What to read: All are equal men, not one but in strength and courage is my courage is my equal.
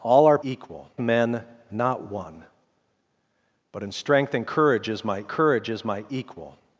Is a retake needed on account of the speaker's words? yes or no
no